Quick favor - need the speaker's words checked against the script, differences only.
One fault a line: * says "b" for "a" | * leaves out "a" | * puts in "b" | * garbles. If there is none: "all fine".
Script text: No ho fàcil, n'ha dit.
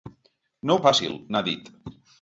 all fine